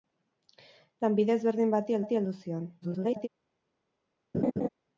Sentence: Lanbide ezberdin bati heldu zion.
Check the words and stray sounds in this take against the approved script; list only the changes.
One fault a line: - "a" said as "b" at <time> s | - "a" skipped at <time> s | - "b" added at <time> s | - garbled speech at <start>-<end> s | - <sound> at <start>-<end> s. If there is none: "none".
- "bati" added at 2.0 s
- garbled speech at 2.8-3.3 s
- laugh at 4.3-4.7 s